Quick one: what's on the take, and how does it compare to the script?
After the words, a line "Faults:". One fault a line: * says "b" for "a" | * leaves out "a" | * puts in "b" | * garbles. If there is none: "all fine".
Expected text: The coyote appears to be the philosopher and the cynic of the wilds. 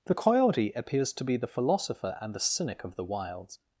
The coyote appears to be the philosopher and the cynic of the wilds.
Faults:
all fine